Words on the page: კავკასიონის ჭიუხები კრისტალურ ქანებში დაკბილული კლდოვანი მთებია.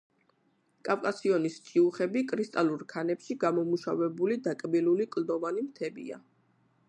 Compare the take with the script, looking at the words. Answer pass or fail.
fail